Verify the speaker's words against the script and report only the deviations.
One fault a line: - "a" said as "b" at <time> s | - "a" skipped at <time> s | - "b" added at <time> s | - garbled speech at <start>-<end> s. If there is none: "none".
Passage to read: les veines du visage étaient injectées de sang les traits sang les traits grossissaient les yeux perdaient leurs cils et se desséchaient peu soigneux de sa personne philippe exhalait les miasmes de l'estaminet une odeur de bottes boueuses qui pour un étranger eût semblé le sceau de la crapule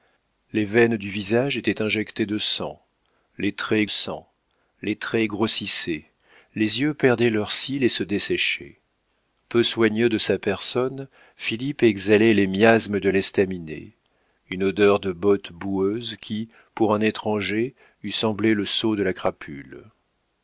none